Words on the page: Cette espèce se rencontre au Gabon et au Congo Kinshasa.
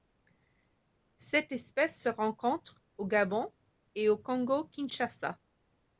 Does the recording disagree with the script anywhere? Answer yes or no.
no